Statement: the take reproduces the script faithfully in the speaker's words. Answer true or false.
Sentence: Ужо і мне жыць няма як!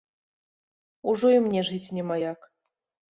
true